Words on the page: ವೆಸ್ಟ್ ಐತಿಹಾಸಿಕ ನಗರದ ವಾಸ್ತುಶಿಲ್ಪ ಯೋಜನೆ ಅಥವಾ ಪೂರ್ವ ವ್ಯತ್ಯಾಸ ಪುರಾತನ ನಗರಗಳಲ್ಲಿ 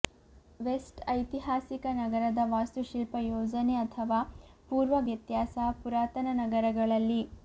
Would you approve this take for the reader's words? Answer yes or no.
yes